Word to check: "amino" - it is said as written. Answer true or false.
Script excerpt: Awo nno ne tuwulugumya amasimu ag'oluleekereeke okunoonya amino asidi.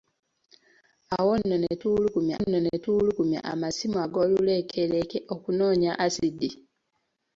false